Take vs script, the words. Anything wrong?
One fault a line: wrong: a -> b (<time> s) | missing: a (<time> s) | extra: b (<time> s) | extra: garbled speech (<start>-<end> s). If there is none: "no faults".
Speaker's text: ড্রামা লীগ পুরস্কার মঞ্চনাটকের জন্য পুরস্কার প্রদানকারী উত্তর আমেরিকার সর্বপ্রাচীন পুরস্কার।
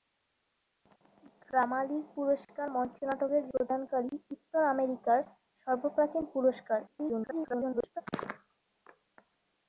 missing: জন্য পুরস্কার (3.4 s)
extra: garbled speech (6.9-8.0 s)